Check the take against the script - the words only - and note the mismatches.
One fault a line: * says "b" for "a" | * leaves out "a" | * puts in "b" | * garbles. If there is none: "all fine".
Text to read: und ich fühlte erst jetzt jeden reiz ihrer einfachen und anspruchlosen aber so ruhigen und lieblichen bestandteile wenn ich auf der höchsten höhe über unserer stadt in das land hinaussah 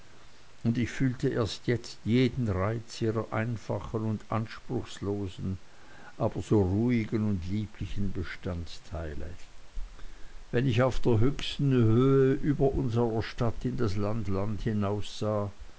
* puts in "land"